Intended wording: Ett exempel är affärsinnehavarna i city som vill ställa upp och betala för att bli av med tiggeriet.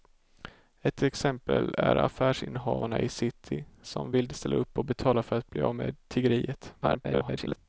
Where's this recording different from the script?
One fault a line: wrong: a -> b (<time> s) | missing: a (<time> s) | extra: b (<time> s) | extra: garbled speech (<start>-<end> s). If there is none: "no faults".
extra: garbled speech (6.8-7.6 s)